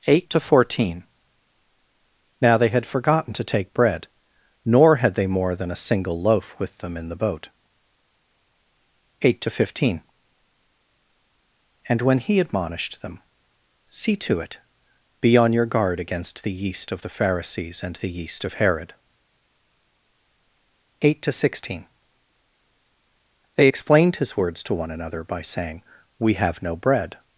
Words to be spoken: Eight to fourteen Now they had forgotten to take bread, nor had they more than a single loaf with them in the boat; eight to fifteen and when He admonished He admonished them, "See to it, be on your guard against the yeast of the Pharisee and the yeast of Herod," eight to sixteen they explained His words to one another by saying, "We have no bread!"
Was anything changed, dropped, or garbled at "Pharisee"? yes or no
yes